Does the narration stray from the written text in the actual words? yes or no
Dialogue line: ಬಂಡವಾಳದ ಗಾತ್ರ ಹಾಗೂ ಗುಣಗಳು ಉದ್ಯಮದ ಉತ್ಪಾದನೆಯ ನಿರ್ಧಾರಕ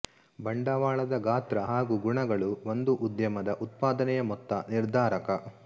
yes